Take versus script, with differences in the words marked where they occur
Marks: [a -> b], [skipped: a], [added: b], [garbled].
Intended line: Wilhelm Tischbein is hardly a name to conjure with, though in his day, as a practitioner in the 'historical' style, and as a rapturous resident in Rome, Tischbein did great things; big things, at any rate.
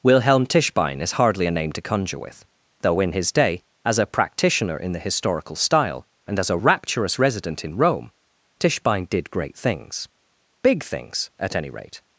Wilhelm Tischbein is hardly a name to conjure with, though in his day, as a practitioner in the 'historical' style, and as a rapturous resident in Rome, Tischbein did great things; big things, at any rate.